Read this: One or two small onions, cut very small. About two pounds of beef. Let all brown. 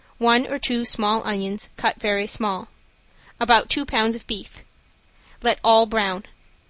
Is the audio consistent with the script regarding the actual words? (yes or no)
yes